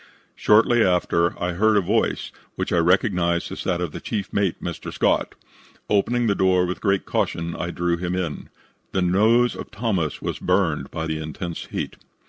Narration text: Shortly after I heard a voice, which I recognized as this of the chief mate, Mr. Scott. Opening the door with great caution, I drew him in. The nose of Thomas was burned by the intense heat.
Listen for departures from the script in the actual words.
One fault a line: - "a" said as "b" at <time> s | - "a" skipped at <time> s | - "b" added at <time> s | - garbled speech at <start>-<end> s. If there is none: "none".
- "this" said as "that" at 3.6 s